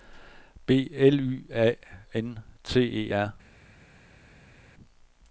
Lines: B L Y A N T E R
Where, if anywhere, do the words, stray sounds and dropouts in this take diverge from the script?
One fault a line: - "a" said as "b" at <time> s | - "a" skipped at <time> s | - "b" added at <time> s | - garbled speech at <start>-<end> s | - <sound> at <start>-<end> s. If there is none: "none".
none